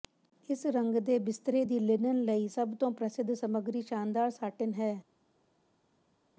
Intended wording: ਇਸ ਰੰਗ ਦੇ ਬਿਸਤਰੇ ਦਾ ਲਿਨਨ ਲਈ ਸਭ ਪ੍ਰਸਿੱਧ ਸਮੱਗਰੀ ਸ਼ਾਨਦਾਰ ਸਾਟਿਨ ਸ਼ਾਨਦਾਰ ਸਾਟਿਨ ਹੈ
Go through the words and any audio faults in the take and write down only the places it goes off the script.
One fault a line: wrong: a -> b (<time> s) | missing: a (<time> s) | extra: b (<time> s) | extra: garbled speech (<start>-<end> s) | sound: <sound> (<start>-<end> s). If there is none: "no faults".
wrong: ਦਾ -> ਦੀ (1.6 s)
extra: ਤੋਂ (2.8 s)
missing: ਸ਼ਾਨਦਾਰ ਸਾਟਿਨ (4.7 s)